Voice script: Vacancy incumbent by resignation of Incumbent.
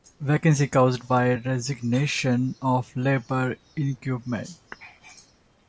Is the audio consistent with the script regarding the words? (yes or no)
no